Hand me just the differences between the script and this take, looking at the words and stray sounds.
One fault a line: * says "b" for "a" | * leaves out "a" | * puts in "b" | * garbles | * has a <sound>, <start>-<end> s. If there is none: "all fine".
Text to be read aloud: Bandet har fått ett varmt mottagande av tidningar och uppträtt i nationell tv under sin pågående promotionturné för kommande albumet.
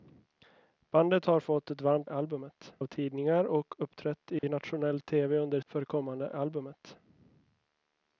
* says "albumet" for "mottagande"
* has a dropout, 4.4-4.4 s
* leaves out "sin pågående promotionturné"